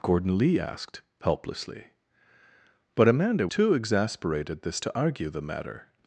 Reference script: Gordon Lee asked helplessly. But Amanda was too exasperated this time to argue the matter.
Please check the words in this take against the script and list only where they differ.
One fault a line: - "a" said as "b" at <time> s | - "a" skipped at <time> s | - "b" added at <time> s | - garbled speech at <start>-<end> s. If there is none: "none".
- "was" skipped at 3.5 s
- "time" skipped at 4.8 s